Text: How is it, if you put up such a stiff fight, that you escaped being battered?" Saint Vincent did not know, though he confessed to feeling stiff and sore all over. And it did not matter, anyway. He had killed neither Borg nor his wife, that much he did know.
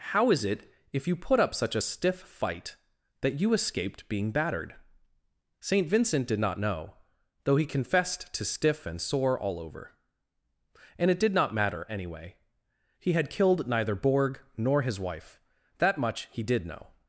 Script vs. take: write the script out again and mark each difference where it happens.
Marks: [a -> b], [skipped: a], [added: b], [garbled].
How is it, if you put up such a stiff fight, that you escaped being battered?" Saint Vincent did not know, though he confessed to [skipped: feeling] stiff and sore all over. And it did not matter, anyway. He had killed neither Borg nor his wife, that much he did know.